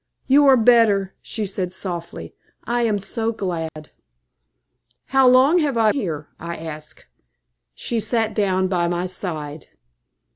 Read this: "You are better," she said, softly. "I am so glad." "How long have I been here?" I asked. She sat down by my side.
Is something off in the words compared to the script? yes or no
yes